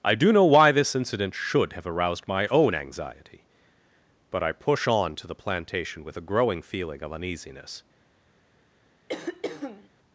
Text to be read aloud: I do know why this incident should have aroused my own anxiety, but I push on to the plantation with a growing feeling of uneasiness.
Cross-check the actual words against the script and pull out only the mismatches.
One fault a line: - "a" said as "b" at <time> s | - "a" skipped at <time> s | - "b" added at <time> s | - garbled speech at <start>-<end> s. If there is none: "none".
none